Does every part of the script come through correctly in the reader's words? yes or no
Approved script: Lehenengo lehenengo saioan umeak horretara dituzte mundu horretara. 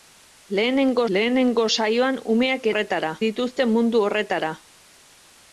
yes